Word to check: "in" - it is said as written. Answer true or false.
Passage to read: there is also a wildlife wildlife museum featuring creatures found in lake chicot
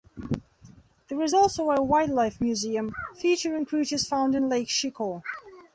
true